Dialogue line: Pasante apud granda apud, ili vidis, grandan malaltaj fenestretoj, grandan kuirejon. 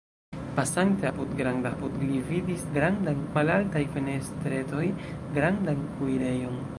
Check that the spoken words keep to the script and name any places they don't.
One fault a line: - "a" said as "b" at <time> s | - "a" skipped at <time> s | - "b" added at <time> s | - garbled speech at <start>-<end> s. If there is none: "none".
none